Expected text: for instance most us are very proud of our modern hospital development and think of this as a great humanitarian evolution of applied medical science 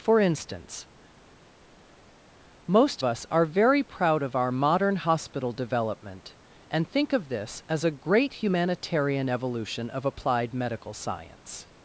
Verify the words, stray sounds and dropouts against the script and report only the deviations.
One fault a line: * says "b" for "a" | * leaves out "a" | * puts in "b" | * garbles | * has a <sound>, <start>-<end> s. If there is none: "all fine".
all fine